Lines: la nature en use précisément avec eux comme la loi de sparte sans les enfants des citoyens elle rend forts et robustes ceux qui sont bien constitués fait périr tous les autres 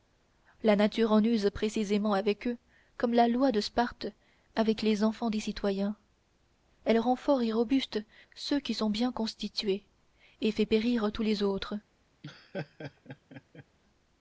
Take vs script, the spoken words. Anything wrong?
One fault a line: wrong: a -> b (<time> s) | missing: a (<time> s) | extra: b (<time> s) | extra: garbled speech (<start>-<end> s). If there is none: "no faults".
wrong: sans -> avec (4.5 s)
extra: et (10.4 s)